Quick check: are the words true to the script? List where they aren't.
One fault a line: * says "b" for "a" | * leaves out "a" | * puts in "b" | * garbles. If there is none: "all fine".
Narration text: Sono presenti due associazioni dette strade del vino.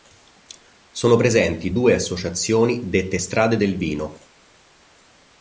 all fine